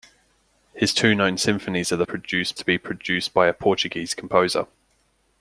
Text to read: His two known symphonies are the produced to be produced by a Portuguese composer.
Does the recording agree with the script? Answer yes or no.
yes